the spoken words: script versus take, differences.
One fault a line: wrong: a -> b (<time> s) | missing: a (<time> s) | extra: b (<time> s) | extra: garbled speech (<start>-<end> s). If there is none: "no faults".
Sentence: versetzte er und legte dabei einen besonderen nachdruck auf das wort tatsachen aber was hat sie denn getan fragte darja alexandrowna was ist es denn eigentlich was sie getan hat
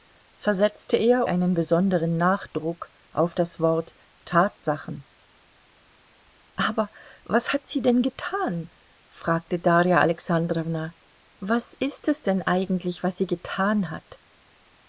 missing: und legte dabei (1.3 s)